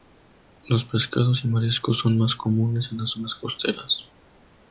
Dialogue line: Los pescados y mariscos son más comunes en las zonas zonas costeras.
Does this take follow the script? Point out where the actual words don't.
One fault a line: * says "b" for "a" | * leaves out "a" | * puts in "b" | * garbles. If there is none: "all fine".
* leaves out "zonas"